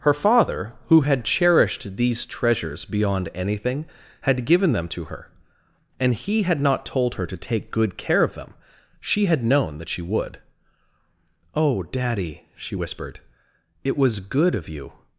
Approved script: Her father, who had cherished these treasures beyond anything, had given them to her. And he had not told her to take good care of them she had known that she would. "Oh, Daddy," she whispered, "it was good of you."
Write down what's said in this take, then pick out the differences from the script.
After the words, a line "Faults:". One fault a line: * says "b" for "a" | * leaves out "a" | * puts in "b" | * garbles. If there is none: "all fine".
Her father, who had cherished these treasures beyond anything, had given them to her. And he had not told her to take good care of them she had known that she would. "Oh, Daddy," she whispered, "it was good of you."
Faults:
all fine